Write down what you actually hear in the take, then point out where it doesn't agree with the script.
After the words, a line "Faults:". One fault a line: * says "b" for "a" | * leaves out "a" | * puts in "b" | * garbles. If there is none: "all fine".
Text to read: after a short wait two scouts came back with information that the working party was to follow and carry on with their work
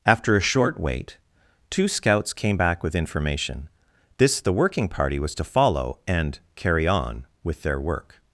after a short wait two scouts came back with information this the working party was to follow and carry on with their work
Faults:
* says "this" for "that"